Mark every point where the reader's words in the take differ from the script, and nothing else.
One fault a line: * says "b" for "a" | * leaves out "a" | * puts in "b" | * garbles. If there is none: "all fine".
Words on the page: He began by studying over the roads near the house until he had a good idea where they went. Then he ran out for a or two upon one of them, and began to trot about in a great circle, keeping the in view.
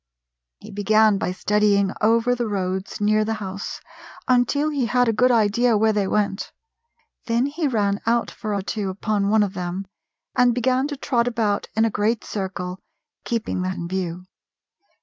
all fine